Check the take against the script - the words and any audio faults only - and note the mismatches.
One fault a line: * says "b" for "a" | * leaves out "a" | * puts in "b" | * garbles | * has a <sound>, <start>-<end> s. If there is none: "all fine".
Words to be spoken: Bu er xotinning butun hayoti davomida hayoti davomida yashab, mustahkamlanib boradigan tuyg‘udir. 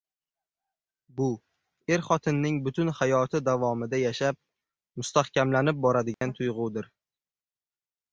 * leaves out "hayoti davomida"
* has a dropout, 6.1-6.2 s